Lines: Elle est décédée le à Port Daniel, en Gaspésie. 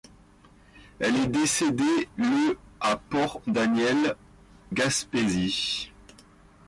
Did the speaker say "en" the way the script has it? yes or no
no